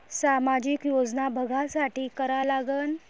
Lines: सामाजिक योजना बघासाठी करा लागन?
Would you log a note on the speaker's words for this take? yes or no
no